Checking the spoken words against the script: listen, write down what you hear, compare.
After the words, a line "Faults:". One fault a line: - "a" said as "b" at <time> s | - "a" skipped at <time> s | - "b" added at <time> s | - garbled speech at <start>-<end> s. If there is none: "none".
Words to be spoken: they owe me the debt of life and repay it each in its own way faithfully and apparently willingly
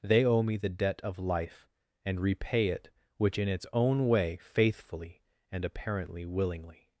they owe me the debt of life and repay it which in its own way faithfully and apparently willingly
Faults:
- "each" said as "which" at 3.2 s